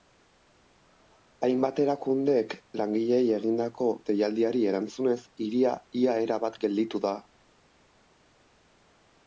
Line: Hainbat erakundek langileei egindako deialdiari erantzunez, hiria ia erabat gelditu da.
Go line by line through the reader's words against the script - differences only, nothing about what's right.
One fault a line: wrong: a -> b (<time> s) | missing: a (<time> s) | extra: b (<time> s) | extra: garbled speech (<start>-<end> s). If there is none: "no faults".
no faults